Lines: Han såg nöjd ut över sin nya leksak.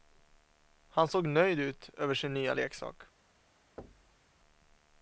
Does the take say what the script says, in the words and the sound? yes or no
no